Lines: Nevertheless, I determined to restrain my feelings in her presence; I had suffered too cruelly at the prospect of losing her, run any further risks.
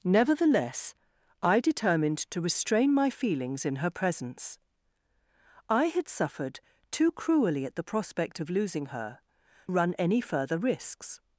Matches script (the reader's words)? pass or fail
pass